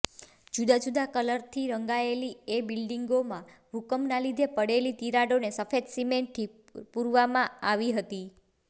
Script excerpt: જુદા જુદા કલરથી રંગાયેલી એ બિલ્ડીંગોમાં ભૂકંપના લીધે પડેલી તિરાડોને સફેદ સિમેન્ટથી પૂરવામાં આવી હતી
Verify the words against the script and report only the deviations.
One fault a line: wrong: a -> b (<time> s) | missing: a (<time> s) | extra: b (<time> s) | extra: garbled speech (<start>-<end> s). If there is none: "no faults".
no faults